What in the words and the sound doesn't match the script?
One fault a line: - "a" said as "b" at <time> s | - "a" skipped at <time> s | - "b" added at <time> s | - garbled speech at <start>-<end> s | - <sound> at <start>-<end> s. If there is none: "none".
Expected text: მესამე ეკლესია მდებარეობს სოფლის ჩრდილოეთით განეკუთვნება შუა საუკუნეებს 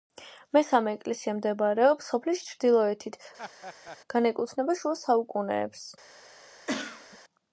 - laugh at 3.4-4.0 s
- cough at 6.7-7.2 s